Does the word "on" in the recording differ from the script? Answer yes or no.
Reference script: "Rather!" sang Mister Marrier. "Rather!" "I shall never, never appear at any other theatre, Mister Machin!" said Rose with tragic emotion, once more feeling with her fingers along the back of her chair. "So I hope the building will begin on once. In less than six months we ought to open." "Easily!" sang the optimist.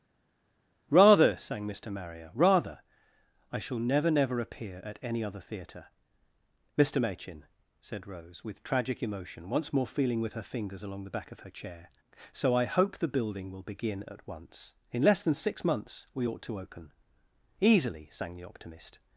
yes